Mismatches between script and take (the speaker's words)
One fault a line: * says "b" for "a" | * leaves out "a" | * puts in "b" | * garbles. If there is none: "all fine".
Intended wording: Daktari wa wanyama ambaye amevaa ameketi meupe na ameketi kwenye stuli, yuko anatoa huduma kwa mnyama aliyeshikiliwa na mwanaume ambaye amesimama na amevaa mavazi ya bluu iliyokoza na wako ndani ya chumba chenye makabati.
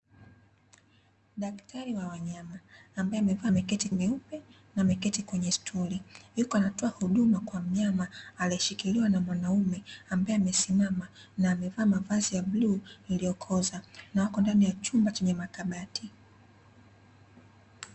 all fine